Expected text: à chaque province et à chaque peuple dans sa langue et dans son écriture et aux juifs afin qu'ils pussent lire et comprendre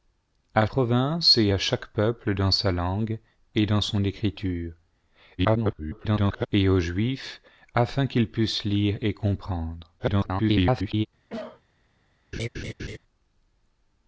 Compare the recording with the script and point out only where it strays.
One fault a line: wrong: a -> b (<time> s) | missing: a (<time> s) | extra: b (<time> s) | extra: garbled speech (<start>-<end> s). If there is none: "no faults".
missing: chaque (0.7 s)
extra: garbled speech (5.4-6.5 s)
extra: garbled speech (10.0-11.1 s)